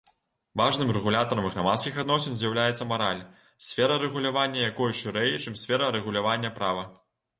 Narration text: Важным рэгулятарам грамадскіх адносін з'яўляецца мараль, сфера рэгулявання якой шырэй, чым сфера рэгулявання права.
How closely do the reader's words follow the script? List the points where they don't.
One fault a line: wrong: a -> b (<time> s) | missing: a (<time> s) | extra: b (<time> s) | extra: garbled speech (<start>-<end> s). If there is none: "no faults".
no faults